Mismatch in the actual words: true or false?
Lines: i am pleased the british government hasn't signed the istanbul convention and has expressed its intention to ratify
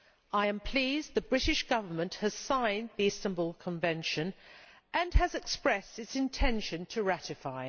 true